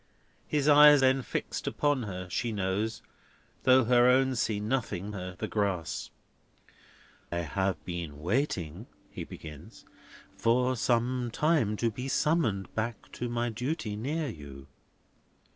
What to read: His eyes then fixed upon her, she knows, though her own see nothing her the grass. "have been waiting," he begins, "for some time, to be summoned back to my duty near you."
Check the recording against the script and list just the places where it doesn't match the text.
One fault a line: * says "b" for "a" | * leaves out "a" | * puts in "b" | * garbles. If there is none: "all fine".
all fine